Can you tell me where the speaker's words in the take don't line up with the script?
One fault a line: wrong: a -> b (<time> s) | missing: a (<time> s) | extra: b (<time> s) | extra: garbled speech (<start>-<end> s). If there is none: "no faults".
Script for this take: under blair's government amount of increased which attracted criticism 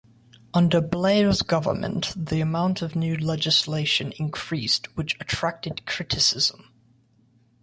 extra: the (2.2 s)
extra: new legislation (3.0 s)